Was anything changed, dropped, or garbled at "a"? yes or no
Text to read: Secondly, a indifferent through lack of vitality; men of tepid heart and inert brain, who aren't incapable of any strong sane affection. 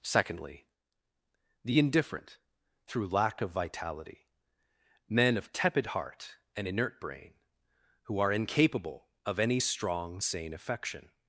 yes